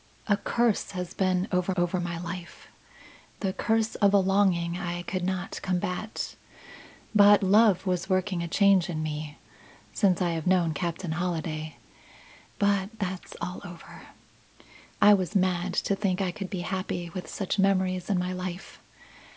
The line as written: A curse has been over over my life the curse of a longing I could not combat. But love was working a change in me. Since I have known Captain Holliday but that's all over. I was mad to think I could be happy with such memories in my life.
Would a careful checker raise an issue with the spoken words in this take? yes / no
no